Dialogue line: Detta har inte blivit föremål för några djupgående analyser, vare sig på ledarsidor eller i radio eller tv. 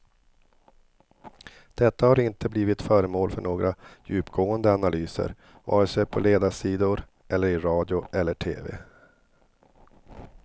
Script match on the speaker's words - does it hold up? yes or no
yes